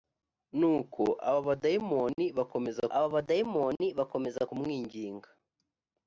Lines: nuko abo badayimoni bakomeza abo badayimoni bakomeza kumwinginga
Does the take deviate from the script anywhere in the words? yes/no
no